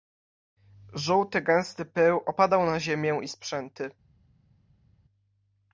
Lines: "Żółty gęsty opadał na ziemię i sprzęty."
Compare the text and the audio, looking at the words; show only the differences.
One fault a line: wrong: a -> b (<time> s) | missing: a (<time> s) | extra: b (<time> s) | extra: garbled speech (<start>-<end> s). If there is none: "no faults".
extra: pył (1.9 s)